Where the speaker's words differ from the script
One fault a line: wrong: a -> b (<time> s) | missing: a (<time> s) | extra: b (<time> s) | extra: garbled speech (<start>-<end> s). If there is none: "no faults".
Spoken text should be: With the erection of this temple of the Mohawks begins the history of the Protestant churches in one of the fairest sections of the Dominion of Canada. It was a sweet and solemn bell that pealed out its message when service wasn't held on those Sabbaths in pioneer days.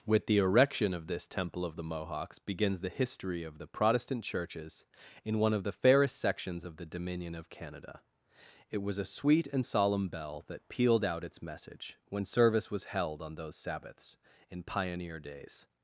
wrong: wasn't -> was (12.7 s)